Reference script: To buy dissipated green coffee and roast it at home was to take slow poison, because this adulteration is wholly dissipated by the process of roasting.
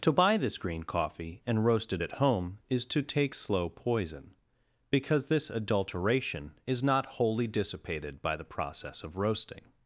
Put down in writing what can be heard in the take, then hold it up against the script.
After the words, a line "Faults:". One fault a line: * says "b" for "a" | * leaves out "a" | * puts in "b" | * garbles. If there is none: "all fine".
To buy this green coffee and roast it at home is to take slow poison, because this adulteration is not wholly dissipated by the process of roasting.
Faults:
* says "this" for "dissipated"
* says "is" for "was"
* puts in "not"